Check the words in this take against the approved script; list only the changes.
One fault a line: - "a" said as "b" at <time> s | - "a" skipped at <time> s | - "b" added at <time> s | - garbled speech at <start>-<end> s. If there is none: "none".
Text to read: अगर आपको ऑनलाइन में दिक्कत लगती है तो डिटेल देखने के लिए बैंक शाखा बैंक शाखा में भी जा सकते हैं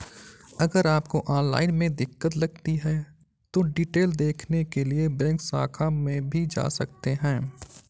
- "बैंक शाखा" skipped at 5.9 s